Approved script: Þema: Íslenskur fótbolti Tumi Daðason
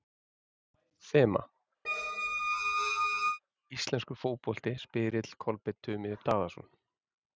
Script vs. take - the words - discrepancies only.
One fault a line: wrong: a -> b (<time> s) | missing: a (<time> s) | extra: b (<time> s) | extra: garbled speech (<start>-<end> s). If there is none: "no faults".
extra: Spyrill Kolbeinn (4.8 s)